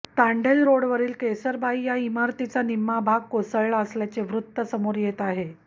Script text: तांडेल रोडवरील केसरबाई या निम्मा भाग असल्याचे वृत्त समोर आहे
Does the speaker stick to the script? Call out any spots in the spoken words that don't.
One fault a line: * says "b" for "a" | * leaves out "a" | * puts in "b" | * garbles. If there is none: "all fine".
* puts in "इमारतीचा"
* puts in "कोसळला"
* puts in "येत"